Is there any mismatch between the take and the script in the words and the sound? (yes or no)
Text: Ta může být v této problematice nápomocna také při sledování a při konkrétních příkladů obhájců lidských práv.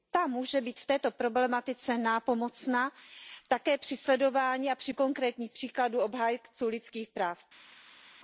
no